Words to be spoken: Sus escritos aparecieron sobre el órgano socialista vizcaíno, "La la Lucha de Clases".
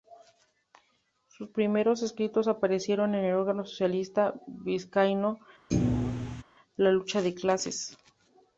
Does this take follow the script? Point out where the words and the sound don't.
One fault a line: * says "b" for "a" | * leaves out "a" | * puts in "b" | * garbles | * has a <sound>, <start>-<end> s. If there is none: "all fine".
* puts in "primeros"
* says "en" for "sobre"
* has a thud, 5.7-6.4 s
* leaves out "la"